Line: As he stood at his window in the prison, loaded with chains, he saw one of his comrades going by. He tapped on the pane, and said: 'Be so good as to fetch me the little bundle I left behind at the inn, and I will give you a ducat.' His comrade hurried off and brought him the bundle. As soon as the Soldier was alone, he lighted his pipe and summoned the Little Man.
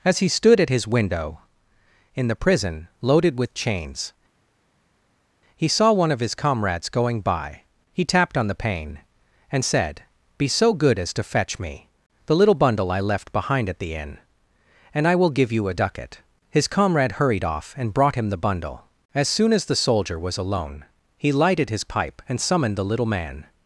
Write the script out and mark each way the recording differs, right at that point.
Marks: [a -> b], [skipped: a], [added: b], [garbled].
As he stood at his window in the prison, loaded with chains, he saw one of his comrades going by. He tapped on the pane, and said: 'Be so good as to fetch me the little bundle I left behind at the inn, and I will give you a ducat.' His comrade hurried off and brought him the bundle. As soon as the Soldier was alone, he lighted his pipe and summoned the Little Man.